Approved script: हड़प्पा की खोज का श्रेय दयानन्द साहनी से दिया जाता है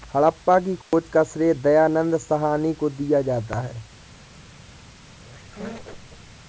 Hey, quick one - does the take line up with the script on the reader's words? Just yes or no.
no